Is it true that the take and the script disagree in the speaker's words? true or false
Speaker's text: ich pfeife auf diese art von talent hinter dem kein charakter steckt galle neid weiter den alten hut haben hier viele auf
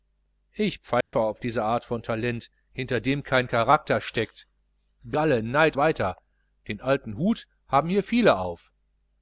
false